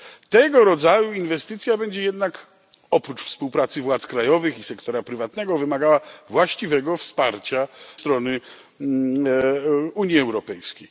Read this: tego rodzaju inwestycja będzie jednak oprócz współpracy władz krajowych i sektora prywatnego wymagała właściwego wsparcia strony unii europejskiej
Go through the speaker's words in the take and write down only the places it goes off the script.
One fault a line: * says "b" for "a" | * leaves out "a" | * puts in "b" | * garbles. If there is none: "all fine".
all fine